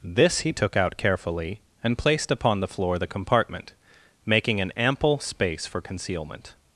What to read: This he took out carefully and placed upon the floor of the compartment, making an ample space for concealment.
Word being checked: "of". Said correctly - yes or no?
no